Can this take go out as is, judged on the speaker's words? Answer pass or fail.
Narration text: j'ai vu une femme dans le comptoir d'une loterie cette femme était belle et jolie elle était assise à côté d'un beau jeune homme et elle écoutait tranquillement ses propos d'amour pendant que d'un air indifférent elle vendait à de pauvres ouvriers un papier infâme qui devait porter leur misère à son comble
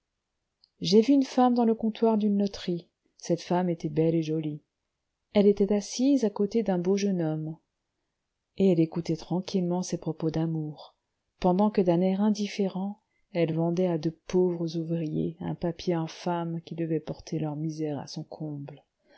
pass